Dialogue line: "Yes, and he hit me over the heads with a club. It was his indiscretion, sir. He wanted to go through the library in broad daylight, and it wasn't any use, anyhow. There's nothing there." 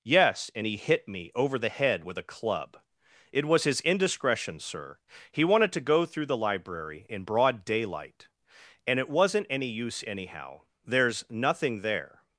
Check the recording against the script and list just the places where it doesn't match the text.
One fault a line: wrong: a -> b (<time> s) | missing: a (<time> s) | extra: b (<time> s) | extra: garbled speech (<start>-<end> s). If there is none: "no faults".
wrong: heads -> head (1.7 s)